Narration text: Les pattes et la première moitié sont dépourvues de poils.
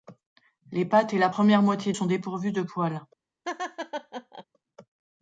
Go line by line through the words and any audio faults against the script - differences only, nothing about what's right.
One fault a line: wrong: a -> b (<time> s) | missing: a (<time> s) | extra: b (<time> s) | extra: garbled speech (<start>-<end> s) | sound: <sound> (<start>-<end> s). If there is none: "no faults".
sound: laugh (3.4-4.4 s)